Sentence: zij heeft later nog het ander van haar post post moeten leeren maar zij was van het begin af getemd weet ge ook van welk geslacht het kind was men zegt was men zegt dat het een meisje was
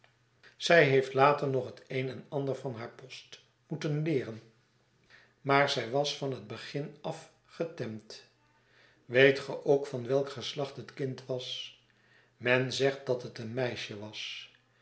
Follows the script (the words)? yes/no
no